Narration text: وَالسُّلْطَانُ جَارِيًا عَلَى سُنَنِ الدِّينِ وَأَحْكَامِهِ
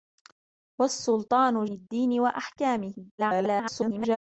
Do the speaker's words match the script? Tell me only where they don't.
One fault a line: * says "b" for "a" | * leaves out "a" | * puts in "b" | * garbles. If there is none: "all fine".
* leaves out "جَارِيًا عَلَى سُنَنِ"
* garbles